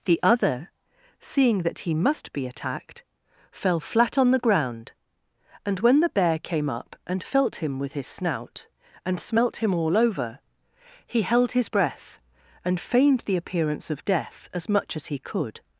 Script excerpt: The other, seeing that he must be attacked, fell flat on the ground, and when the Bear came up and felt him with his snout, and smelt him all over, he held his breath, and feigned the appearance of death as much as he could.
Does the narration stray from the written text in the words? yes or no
no